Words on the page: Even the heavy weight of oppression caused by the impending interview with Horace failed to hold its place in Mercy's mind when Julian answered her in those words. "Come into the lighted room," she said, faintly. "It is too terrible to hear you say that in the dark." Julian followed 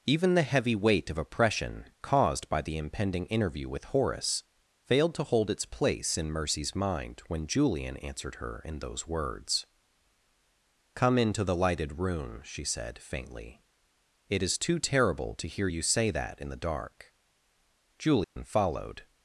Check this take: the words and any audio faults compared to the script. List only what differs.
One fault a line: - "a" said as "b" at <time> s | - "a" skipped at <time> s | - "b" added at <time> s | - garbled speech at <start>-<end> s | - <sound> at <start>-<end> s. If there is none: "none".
- dropout at 18.2-18.4 s